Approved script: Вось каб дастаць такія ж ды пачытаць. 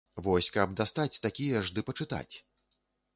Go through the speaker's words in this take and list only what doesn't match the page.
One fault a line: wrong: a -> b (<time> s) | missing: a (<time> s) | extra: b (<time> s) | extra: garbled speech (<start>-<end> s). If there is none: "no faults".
no faults